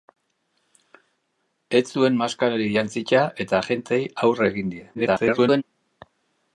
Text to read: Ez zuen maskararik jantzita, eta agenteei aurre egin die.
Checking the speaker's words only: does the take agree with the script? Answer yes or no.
no